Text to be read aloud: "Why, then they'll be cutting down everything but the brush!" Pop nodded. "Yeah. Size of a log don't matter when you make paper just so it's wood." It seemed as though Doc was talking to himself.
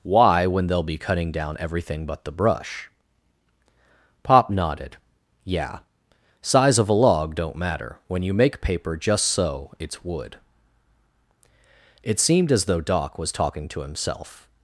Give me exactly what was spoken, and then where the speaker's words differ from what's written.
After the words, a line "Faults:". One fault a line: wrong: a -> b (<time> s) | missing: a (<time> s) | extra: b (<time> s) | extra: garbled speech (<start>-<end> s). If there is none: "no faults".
"Why, when they'll be cutting down everything but the brush!" Pop nodded. "Yeah. Size of a log don't matter when you make paper just so it's wood." It seemed as though Doc was talking to himself.
Faults:
wrong: then -> when (0.5 s)